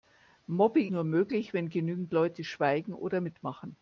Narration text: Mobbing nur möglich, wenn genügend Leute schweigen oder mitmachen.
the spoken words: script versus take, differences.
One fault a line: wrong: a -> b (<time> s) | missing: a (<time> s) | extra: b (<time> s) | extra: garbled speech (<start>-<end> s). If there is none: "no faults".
no faults